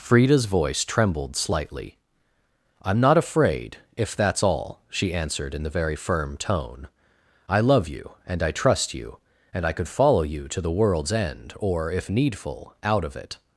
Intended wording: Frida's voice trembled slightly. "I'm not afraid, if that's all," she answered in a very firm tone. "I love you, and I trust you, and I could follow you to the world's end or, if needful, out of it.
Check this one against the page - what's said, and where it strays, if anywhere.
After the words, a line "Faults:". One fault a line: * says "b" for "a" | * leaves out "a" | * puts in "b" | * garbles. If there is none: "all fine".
Frida's voice trembled slightly. "I'm not afraid, if that's all," she answered in the very firm tone. "I love you, and I trust you, and I could follow you to the world's end or, if needful, out of it.
Faults:
* says "the" for "a"